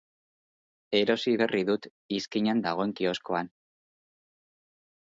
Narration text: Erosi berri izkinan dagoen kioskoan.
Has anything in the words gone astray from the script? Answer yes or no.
yes